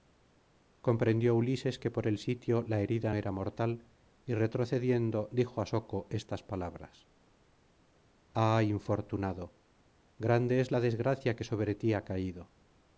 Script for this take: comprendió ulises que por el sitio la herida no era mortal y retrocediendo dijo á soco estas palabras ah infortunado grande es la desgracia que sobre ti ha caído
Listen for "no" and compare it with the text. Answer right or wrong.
wrong